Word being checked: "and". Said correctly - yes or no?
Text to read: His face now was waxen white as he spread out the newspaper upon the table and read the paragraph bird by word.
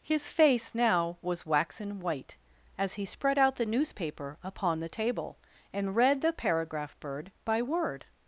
yes